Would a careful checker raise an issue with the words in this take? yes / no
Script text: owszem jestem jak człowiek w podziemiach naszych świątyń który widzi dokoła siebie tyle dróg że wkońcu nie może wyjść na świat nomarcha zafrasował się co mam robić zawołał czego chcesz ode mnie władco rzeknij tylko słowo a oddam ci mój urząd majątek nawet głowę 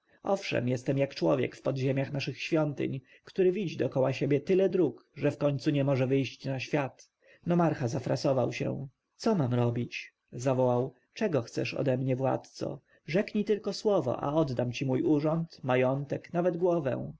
no